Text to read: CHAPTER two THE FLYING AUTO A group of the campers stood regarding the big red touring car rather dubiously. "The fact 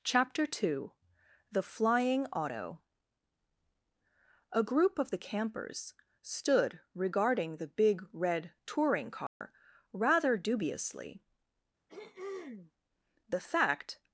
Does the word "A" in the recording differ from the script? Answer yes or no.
no